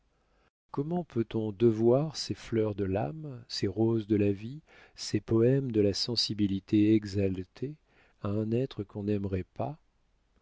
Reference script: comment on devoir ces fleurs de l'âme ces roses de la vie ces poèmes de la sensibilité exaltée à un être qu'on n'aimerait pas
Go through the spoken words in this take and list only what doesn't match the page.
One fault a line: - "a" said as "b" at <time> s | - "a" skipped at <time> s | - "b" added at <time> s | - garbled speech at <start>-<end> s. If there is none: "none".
- "peut" added at 1.0 s